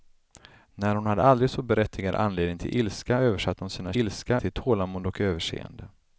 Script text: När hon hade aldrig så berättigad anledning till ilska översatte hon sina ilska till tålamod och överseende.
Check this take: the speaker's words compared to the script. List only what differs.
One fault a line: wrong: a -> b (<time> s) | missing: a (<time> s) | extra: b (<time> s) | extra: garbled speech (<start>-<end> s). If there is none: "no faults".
no faults